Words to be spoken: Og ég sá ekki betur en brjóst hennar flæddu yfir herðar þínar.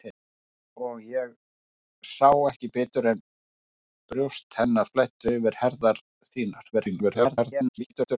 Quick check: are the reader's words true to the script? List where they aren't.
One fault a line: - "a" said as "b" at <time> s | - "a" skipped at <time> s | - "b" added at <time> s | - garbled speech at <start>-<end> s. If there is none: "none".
- garbled speech at 6.7-8.2 s